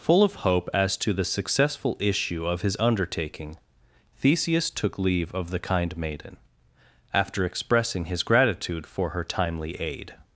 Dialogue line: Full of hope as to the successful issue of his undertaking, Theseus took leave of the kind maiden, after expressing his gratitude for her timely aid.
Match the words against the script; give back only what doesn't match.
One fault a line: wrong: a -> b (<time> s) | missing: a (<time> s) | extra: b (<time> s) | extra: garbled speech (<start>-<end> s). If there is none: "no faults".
no faults